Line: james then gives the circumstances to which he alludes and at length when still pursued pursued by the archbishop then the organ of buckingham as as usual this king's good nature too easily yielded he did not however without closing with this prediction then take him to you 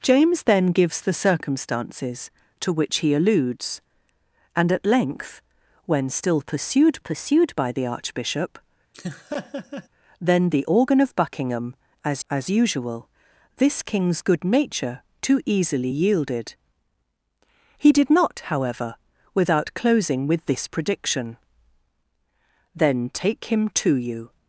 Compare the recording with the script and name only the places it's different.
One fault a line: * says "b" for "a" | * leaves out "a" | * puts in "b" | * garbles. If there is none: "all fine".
all fine